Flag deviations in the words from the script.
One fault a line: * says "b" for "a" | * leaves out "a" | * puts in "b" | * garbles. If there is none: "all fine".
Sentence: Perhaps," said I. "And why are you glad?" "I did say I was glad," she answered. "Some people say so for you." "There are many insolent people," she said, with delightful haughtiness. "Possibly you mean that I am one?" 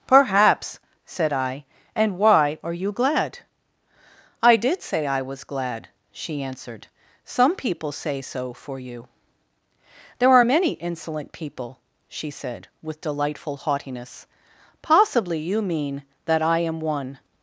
all fine